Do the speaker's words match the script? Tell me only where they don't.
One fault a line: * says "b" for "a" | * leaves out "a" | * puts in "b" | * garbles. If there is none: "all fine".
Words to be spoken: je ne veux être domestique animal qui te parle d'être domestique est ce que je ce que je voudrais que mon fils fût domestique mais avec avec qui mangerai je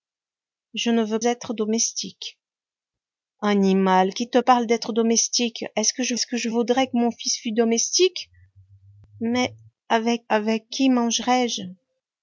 all fine